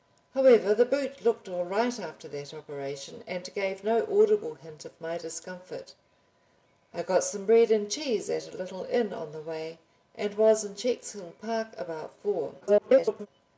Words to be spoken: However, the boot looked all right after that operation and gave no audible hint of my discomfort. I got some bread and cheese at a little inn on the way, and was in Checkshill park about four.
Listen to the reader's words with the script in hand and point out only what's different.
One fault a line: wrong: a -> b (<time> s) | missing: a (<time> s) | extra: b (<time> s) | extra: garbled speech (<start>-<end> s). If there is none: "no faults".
extra: garbled speech (12.6-13.3 s)